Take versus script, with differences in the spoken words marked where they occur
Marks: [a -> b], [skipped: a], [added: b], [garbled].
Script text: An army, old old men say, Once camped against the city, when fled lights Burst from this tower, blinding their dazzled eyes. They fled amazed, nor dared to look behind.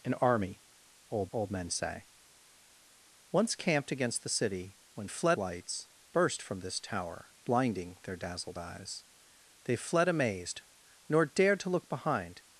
An army, old old men say, Once camped against the city, when fled lights Burst from this tower, blinding their dazzled eyes. They fled amazed, nor dared to look behind.